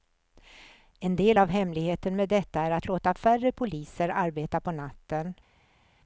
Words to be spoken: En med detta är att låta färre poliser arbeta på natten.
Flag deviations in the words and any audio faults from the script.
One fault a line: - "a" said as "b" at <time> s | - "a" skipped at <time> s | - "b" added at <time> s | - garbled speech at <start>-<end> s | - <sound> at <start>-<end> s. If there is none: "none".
- "del av hemligheten" added at 1.1 s